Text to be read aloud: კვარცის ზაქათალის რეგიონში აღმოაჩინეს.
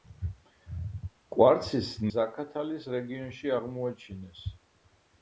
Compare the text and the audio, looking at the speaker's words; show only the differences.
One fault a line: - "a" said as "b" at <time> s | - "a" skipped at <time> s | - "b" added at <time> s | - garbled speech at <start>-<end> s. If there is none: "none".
none